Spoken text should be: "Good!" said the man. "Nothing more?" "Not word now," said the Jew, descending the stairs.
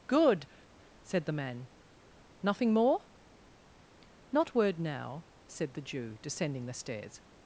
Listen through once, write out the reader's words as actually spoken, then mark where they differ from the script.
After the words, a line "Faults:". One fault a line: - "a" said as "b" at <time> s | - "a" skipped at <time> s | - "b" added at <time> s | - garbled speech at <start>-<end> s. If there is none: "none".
"Good!" said the man. "Nothing more?" "Not word now," said the Jew, descending the stairs.
Faults:
none